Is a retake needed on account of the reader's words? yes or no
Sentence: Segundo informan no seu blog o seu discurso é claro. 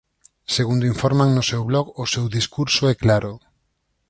no